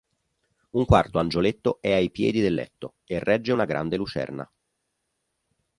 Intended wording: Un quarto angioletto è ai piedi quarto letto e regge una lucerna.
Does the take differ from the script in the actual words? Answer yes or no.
yes